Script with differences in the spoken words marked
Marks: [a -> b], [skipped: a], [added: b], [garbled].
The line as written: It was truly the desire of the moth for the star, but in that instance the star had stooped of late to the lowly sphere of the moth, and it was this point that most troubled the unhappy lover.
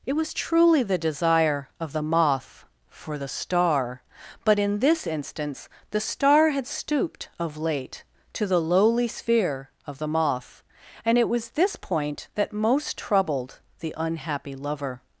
It was truly the desire of the moth for the star, but in [that -> this] instance the star had stooped of late to the lowly sphere of the moth, and it was this point that most troubled the unhappy lover.